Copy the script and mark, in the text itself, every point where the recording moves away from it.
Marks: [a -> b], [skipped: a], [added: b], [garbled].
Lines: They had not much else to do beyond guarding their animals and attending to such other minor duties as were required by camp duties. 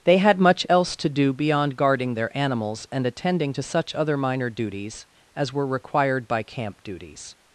They had [skipped: not] much else to do beyond guarding their animals and attending to such other minor duties as were required by camp duties.